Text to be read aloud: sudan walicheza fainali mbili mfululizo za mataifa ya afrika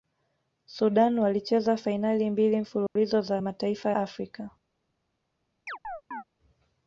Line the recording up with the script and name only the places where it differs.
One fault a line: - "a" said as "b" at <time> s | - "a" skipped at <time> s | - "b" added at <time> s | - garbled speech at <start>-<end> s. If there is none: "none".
- "ya" skipped at 3.9 s